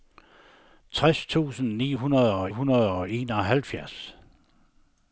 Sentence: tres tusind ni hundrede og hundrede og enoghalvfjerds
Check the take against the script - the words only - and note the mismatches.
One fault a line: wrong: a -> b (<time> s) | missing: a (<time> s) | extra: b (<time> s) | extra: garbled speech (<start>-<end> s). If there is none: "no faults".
no faults